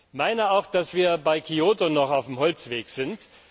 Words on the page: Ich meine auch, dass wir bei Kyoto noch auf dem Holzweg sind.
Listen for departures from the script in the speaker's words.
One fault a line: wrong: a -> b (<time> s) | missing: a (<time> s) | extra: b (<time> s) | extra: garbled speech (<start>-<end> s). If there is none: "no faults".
no faults